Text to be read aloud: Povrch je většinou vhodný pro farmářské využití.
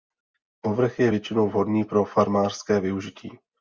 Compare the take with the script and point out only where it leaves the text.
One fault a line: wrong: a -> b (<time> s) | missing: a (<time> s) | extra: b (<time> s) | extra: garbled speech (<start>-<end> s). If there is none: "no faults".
no faults